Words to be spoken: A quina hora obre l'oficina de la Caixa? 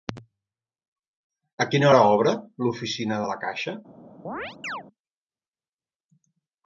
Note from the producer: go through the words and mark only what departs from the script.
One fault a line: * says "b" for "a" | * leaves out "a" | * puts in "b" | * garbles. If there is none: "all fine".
all fine